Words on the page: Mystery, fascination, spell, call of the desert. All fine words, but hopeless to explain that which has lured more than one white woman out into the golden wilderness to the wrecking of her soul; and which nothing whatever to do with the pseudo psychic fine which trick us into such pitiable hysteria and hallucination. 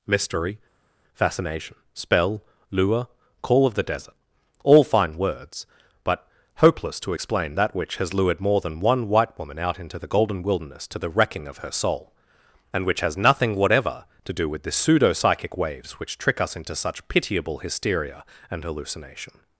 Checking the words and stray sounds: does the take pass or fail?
fail